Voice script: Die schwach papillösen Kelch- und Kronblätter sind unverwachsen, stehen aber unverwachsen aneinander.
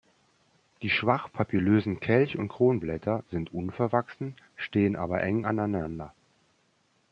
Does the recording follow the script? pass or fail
fail